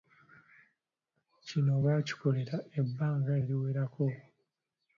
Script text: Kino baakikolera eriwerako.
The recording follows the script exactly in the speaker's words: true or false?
false